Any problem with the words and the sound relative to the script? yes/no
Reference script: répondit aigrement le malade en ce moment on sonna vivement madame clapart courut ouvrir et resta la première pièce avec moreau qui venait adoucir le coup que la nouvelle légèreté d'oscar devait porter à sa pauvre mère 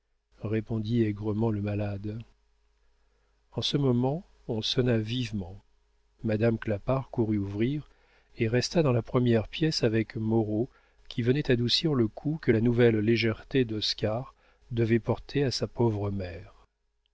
yes